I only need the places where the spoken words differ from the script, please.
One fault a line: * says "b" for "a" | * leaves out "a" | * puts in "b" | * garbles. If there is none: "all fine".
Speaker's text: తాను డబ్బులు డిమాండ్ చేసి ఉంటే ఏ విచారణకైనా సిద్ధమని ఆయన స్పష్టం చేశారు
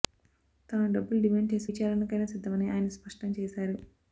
* leaves out "ఉంటే ఏ"